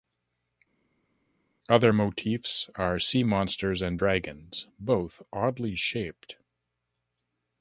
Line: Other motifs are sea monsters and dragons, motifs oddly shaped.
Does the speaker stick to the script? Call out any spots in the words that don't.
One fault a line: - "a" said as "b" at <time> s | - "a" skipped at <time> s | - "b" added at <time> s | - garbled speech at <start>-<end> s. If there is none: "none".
- "motifs" said as "both" at 4.8 s